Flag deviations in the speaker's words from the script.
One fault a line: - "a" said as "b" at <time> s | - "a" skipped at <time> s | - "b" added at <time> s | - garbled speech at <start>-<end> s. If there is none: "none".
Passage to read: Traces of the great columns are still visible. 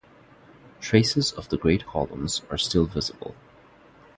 none